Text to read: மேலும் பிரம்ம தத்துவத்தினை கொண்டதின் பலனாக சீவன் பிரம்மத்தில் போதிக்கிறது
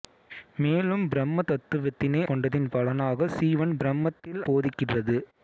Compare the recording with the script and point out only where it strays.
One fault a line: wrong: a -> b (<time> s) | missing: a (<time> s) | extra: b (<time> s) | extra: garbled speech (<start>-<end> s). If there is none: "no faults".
no faults